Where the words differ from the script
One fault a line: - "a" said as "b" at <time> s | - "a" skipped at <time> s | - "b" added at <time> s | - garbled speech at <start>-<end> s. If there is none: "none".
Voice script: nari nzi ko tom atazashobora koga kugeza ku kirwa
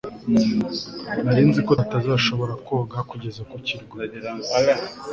- "tom" skipped at 1.7 s